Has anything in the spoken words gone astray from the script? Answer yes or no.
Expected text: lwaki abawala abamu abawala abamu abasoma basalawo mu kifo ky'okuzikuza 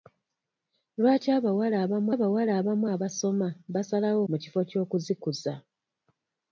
no